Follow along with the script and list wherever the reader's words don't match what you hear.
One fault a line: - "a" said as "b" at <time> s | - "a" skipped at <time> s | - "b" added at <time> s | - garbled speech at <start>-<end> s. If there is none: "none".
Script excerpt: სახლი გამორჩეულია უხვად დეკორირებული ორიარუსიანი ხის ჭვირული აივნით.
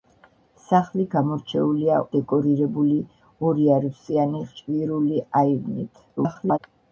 - "უხვად" skipped at 2.0 s
- "ხის" skipped at 4.5 s
- garbled speech at 6.2-6.6 s